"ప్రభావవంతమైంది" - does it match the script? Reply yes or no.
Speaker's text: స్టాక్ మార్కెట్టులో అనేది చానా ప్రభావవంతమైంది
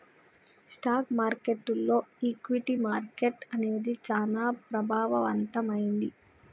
yes